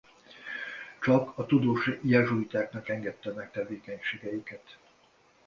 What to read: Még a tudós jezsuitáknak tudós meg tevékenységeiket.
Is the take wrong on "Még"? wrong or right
wrong